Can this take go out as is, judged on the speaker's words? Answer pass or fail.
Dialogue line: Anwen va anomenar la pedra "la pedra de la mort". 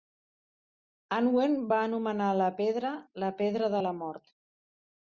pass